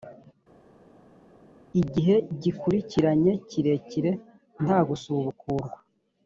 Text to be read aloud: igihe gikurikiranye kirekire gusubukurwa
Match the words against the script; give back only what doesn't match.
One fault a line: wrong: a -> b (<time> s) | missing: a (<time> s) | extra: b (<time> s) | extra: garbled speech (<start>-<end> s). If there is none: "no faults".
extra: nta (4.6 s)